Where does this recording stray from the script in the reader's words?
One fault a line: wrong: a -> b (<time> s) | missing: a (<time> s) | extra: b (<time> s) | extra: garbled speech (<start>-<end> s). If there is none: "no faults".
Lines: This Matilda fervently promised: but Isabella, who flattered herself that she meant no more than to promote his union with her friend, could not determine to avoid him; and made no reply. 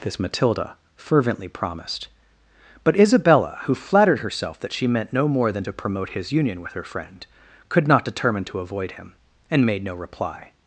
no faults